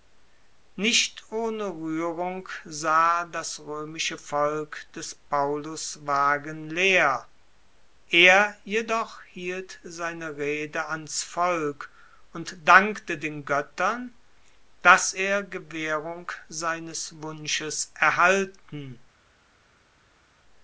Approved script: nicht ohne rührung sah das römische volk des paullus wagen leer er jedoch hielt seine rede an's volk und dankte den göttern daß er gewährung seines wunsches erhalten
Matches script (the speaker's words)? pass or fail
pass